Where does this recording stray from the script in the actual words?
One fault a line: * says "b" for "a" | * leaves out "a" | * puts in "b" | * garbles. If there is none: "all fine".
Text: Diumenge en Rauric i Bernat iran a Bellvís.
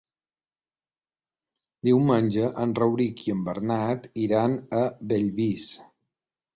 * puts in "en"